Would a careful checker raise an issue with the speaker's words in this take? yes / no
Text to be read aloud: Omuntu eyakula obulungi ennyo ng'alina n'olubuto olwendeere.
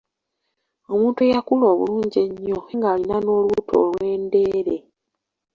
no